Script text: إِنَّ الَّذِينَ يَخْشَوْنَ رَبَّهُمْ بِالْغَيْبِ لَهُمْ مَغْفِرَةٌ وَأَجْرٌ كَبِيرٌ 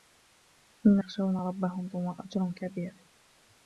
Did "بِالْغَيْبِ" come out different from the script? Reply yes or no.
yes